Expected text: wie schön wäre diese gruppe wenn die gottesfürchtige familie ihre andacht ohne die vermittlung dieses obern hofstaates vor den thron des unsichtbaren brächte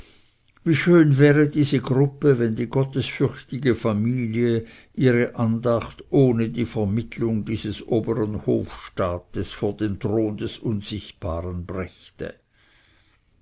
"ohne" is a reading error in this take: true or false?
false